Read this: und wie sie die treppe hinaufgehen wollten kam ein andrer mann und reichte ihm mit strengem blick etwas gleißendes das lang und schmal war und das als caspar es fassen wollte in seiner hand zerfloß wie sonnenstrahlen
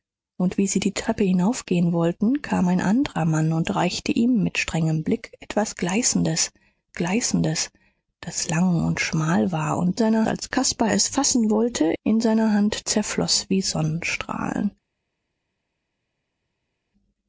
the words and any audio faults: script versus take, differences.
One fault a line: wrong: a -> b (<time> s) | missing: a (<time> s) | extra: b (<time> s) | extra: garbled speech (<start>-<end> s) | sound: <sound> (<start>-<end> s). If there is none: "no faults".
extra: gleißendes (6.9 s)
wrong: das -> seiner (9.9 s)